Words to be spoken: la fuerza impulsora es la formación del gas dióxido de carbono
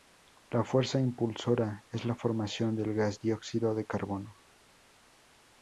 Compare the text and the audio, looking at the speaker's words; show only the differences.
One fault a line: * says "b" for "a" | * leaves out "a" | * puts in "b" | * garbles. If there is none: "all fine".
all fine